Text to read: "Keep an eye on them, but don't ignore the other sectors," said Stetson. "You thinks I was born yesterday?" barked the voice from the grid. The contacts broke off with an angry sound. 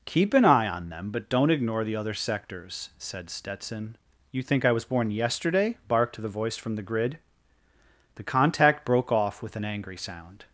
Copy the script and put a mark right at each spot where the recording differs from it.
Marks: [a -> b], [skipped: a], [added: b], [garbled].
"Keep an eye on them, but don't ignore the other sectors," said Stetson. "You [thinks -> think] I was born yesterday?" barked the voice from the grid. The [contacts -> contact] broke off with an angry sound.